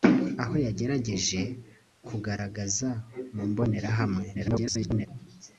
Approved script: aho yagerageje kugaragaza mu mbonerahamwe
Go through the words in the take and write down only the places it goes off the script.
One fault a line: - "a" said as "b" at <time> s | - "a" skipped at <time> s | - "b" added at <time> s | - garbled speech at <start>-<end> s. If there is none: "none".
- garbled speech at 4.3-5.1 s